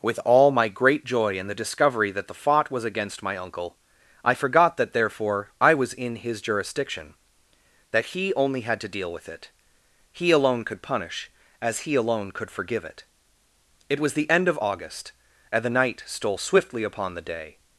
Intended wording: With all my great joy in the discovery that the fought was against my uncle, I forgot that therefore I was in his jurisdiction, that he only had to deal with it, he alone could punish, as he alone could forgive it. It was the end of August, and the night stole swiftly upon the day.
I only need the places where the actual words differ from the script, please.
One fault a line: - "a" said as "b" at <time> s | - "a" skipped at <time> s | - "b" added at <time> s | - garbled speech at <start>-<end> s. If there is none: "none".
none